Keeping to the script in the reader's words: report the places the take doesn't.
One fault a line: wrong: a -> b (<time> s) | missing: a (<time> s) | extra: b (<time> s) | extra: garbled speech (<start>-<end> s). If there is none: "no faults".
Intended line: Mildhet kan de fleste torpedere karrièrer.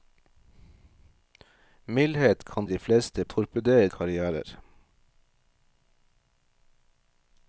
no faults